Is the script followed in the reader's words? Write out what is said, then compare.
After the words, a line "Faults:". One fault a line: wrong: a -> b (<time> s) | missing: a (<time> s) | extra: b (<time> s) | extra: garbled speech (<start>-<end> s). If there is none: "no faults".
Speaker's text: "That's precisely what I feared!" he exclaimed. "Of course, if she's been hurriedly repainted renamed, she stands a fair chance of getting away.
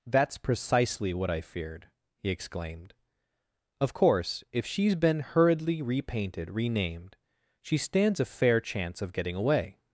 "That's precisely what I feared!" he exclaimed. "Of course, if she's been hurriedly repainted renamed, she stands a fair chance of getting away.
Faults:
no faults